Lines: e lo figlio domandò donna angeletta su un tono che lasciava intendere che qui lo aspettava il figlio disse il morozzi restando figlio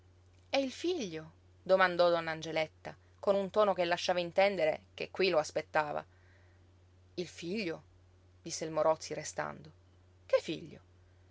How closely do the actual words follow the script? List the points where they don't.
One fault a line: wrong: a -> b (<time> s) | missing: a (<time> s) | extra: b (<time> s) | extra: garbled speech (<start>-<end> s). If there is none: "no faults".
wrong: lo -> il (0.6 s)
wrong: su -> con (3.2 s)
extra: che (10.3 s)